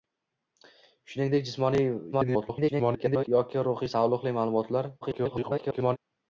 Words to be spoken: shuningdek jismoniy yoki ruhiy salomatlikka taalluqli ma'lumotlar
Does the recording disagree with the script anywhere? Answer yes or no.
yes